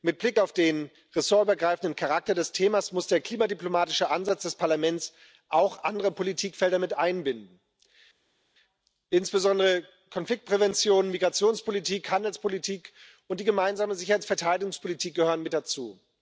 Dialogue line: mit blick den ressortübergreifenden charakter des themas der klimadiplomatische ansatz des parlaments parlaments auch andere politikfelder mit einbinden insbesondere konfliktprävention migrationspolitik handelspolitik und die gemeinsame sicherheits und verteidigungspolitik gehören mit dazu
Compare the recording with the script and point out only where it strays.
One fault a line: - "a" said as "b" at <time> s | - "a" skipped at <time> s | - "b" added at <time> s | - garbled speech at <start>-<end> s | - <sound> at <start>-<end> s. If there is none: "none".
- "auf" added at 0.4 s
- "muss" added at 2.9 s
- "parlaments" skipped at 5.1 s